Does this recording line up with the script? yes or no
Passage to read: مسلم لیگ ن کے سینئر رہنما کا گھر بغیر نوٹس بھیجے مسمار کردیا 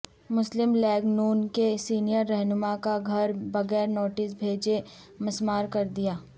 yes